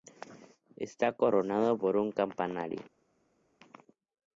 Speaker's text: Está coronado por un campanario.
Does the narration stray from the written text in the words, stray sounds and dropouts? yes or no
no